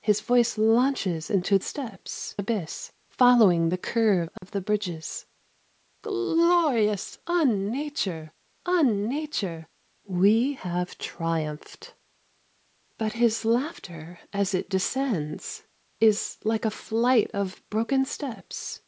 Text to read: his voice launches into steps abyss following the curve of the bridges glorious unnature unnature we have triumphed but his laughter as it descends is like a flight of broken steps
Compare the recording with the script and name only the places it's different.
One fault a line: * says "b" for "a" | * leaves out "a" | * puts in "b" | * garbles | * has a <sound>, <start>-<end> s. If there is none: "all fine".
* has a dropout, 4.4-4.4 s